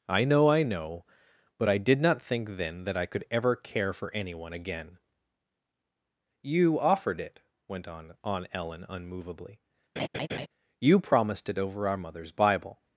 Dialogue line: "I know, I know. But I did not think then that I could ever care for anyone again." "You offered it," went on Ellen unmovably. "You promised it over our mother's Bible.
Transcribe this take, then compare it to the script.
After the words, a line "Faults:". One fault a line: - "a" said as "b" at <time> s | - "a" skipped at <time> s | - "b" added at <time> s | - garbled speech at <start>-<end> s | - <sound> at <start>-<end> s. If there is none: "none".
"I know, I know. But I did not think then that I could ever care for anyone again." "You offered it," went on on Ellen unmovably. "You promised it over our mother's Bible.
Faults:
- "on" added at 8.2 s
- laugh at 10.0-10.5 s